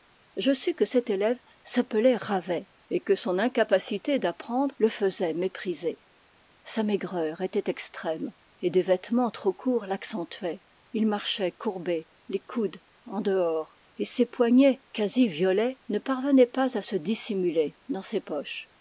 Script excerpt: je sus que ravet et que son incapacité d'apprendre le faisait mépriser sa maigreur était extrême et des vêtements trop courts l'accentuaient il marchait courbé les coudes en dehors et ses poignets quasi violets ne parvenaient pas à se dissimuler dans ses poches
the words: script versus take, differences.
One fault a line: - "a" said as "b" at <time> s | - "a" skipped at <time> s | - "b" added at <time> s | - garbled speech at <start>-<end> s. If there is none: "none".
- "cet élève s'appelait" added at 0.8 s